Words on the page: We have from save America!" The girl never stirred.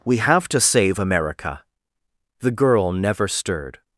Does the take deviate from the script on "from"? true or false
true